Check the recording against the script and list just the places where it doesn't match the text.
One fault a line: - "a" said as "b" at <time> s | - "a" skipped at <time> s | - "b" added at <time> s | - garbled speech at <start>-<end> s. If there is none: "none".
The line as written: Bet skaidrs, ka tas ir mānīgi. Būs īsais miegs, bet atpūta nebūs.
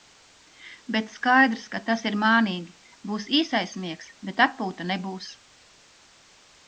none